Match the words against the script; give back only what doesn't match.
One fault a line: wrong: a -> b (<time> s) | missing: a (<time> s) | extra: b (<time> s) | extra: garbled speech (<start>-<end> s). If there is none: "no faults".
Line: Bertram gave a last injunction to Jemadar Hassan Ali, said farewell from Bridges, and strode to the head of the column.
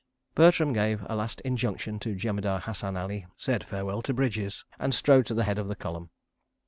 wrong: from -> to (4.0 s)